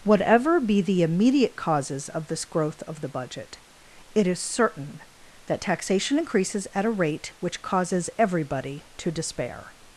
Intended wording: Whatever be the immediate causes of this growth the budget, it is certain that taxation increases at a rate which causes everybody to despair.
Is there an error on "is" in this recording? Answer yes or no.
no